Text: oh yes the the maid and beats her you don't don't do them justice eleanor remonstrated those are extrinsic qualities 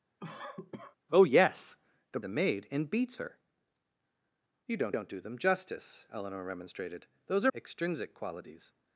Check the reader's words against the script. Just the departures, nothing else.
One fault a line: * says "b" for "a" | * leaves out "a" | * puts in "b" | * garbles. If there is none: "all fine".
all fine